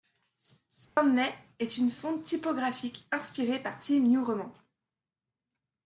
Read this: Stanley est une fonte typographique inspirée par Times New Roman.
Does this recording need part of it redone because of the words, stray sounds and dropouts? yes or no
yes